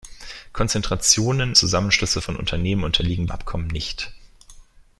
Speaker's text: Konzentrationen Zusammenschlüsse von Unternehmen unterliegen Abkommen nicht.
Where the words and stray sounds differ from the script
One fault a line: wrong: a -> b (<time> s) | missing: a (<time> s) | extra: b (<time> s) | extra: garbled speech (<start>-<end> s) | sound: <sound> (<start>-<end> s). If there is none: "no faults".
no faults